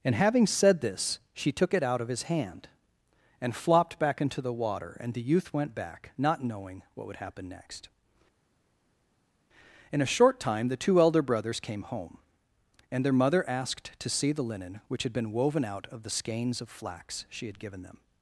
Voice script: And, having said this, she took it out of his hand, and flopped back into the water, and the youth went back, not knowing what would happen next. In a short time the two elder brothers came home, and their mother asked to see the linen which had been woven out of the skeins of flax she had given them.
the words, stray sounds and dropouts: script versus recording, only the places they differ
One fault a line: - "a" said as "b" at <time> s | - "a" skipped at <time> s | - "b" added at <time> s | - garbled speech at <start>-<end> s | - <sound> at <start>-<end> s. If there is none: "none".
none